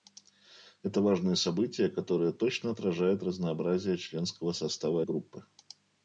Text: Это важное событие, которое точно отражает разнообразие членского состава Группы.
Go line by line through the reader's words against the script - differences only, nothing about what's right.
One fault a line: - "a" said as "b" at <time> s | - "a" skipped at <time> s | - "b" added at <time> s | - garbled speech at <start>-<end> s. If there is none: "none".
none